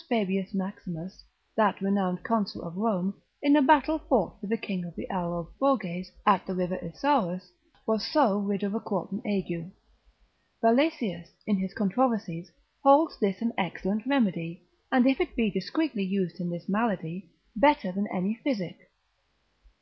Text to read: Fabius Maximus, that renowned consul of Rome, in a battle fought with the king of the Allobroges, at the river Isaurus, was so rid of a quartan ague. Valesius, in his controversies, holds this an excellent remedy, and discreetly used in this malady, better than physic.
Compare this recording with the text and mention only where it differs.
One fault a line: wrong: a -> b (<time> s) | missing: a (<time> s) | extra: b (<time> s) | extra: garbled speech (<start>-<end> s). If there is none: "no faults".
extra: if it be (15.0 s)
extra: any (18.1 s)